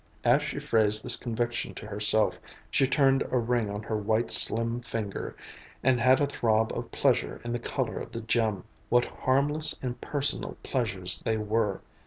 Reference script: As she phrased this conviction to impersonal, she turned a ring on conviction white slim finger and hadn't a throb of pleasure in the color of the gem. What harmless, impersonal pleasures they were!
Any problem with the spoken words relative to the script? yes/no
yes